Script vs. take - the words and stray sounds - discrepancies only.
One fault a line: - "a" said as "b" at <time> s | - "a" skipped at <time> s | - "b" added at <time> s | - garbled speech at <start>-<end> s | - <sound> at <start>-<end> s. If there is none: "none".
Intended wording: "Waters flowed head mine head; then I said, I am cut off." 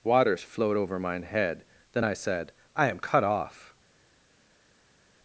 - "head" said as "over" at 0.8 s